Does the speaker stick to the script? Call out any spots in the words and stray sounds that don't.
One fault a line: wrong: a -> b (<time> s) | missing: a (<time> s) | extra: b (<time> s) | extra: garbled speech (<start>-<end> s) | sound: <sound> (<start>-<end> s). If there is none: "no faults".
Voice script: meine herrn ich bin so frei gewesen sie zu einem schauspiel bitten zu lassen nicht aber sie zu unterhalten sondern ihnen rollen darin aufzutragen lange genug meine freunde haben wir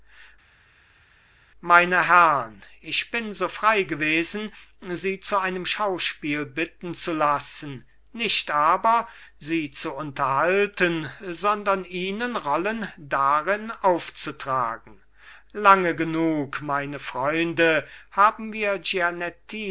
no faults